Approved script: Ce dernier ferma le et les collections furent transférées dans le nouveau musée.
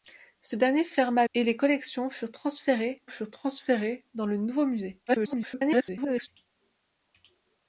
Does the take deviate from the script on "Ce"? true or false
false